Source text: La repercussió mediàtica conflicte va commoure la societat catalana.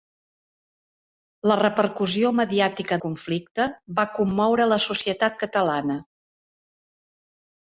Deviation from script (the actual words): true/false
false